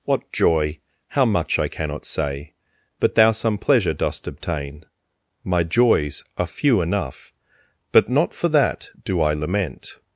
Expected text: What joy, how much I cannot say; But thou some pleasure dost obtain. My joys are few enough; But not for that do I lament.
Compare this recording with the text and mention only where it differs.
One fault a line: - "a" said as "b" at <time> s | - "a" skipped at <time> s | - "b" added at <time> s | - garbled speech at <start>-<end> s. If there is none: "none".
none